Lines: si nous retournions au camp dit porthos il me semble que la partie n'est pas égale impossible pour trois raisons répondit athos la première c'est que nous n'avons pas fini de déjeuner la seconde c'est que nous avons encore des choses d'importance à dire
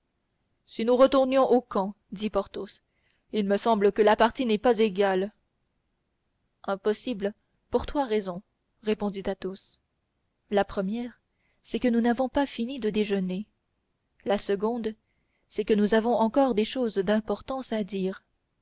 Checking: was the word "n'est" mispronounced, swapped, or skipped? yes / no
no